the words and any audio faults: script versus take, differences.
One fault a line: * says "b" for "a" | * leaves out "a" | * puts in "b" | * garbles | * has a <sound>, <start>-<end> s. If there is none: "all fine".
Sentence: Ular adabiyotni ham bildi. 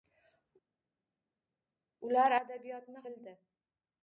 * leaves out "ham"